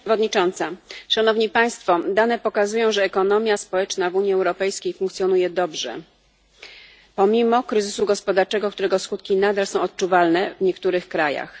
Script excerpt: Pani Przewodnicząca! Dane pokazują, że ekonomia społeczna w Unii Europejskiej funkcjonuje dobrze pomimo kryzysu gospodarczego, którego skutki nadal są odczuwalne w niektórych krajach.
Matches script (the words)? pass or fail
pass